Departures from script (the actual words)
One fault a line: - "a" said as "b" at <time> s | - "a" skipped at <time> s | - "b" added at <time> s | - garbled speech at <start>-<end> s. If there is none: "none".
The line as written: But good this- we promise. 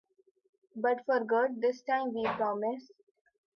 - "for" added at 1.1 s
- "time" added at 1.8 s